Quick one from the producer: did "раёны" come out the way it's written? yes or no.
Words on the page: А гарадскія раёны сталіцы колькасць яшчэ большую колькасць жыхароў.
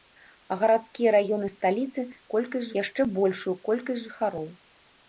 yes